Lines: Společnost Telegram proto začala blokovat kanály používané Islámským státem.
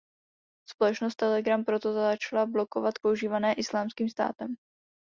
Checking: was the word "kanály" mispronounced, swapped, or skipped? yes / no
yes